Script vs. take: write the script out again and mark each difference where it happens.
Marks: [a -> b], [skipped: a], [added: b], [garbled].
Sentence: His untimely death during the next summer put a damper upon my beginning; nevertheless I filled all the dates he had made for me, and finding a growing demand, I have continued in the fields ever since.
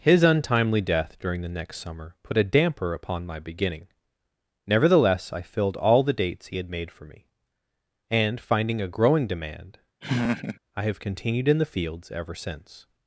His untimely death during the next summer put a damper upon my beginning; nevertheless I filled all the dates he had made for me, and finding a growing demand, I have continued in the fields ever since.